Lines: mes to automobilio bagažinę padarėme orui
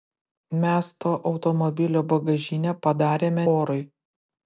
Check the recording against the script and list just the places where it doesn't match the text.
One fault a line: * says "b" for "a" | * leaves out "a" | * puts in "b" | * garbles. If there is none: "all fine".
all fine